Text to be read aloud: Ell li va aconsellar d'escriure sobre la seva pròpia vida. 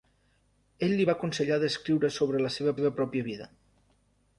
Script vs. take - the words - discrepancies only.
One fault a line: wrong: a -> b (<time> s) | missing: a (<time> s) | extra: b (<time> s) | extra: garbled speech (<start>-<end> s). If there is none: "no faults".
extra: seva (2.8 s)